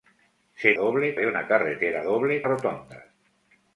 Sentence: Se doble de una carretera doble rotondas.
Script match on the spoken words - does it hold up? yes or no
yes